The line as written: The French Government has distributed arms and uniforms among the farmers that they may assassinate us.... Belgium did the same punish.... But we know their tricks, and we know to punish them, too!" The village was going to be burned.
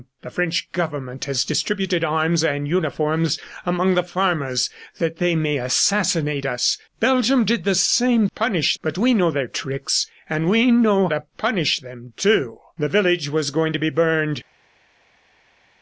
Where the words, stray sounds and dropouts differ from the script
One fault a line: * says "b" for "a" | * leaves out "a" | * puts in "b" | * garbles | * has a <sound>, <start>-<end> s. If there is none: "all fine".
all fine